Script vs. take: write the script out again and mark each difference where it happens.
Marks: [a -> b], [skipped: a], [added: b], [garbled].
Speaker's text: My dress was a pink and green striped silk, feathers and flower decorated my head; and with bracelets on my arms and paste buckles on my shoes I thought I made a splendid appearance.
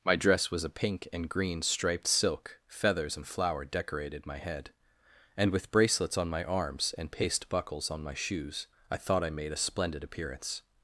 My dress was a pink and green striped silk, feathers and flower decorated my head; and with bracelets on my arms and paste buckles on my shoes I thought I made a splendid appearance.